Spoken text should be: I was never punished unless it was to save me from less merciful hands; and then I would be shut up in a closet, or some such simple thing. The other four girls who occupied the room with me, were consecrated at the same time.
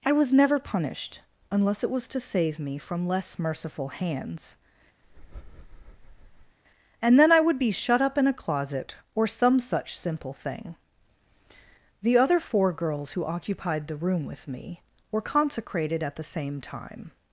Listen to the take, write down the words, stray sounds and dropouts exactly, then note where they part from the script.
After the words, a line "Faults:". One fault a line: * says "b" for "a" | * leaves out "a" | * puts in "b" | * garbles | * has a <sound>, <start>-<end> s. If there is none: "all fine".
I was never punished unless it was to save me from less merciful hands; and then I would be shut up in a closet, or some such simple thing. The other four girls who occupied the room with me, were consecrated at the same time.
Faults:
* has a breath, 5.0-6.6 s